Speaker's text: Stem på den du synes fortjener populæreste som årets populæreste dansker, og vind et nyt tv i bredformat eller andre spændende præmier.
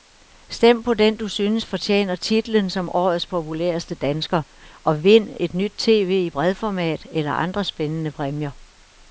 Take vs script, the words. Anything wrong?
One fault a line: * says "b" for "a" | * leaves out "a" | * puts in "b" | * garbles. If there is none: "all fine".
* says "titlen" for "populæreste"